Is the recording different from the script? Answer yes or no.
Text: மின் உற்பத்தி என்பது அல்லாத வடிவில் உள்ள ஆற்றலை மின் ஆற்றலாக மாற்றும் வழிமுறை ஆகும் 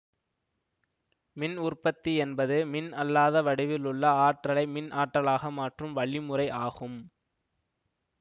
yes